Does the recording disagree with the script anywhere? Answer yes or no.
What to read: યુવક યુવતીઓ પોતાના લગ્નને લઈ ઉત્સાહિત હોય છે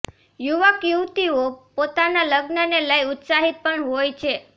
yes